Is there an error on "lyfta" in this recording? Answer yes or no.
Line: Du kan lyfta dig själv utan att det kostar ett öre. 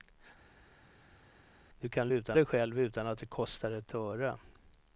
yes